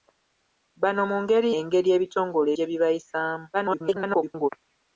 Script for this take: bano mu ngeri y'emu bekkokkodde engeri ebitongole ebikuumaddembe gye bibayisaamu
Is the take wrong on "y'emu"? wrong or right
wrong